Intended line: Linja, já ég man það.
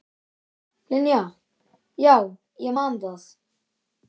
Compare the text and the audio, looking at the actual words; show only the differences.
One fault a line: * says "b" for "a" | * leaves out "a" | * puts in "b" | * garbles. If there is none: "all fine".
all fine